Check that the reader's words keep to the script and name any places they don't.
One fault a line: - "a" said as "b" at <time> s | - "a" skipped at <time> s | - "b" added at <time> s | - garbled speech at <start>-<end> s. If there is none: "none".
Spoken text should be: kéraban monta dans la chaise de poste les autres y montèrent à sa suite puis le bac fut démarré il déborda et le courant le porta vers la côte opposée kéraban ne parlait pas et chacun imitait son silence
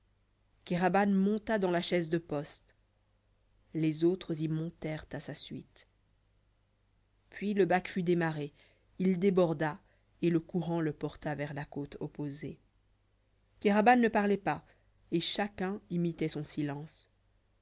none